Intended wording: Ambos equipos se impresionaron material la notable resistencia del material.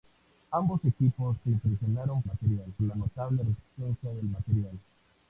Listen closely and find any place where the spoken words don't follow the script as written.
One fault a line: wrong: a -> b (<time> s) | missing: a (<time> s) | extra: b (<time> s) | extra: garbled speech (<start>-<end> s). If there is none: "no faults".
no faults